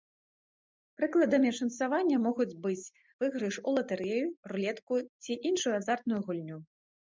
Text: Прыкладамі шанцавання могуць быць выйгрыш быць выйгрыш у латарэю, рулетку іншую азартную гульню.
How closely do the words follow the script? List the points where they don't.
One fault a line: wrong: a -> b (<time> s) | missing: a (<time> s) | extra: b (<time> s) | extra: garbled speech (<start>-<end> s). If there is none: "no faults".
missing: быць выйгрыш (3.5 s)
extra: ці (5.2 s)